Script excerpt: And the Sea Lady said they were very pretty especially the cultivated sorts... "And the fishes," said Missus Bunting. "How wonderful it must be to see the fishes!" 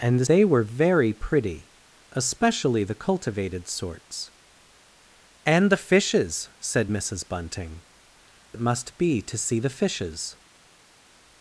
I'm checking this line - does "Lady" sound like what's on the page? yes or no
no